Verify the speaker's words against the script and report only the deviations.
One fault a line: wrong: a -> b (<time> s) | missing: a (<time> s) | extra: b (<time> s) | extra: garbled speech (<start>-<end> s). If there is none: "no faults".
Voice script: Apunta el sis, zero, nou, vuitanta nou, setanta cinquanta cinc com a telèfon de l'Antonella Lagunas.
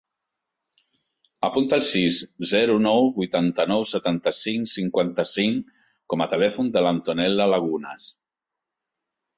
extra: cinc (4.4 s)